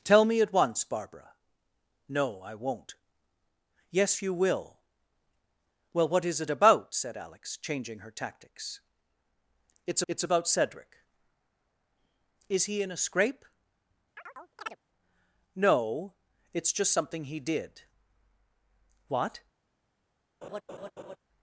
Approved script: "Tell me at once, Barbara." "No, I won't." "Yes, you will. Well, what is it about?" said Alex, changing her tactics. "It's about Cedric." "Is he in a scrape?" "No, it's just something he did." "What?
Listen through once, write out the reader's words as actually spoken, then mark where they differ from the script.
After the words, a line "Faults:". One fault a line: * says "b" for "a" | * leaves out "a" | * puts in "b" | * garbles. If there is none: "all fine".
"Tell me at once, Barbara." "No, I won't." "Yes, you will. Well, what is it about?" said Alex, changing her tactics. "It's it's about Cedric." "Is he in a scrape?" "No, it's just something he did." "What?
Faults:
* puts in "it's"